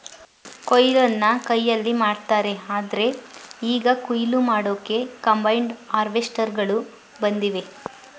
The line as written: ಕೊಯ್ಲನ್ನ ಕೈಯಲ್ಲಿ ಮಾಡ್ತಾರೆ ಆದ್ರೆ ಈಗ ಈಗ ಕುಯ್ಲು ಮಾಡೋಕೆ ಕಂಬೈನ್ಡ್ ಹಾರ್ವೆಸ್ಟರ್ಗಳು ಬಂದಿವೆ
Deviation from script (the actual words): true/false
true